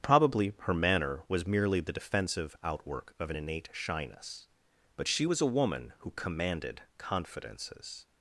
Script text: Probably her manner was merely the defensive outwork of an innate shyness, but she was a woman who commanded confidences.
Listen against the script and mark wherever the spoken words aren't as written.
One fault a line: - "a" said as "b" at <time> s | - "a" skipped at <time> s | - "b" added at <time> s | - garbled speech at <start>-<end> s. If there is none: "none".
none